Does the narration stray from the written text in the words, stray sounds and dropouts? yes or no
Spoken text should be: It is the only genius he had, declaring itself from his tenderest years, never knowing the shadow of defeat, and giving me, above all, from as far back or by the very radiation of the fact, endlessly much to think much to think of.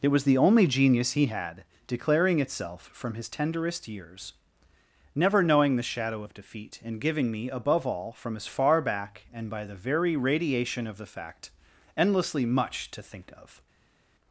yes